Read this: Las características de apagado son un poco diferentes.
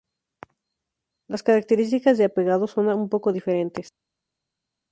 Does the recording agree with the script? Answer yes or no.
yes